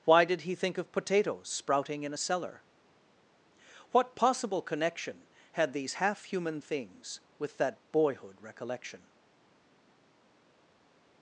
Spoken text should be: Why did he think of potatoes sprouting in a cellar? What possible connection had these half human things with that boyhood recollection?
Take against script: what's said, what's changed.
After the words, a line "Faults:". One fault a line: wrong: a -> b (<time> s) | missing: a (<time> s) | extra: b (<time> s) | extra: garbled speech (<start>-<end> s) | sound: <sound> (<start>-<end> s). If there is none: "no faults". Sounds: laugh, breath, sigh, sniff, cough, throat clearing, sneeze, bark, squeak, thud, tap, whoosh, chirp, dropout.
Why did he think of potatoes sprouting in a cellar? What possible connection had these half human things with that boyhood recollection?
Faults:
no faults